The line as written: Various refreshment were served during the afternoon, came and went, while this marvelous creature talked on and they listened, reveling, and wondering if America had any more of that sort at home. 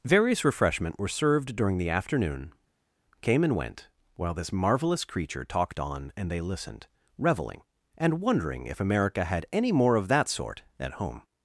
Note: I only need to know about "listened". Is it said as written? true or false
true